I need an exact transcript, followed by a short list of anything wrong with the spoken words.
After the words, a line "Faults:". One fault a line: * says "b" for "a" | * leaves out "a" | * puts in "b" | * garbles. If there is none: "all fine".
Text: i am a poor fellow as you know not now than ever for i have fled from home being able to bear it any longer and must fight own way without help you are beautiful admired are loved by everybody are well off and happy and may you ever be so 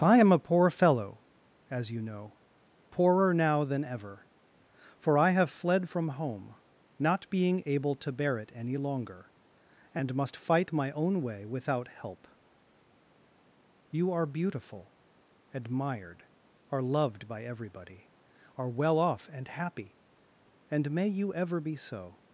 i am a poor fellow as you know poorer now than ever for i have fled from home not being able to bear it any longer and must fight my own way without help you are beautiful admired are loved by everybody are well off and happy and may you ever be so
Faults:
* says "poorer" for "not"
* puts in "not"
* puts in "my"